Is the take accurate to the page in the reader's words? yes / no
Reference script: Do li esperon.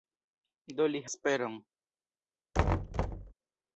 yes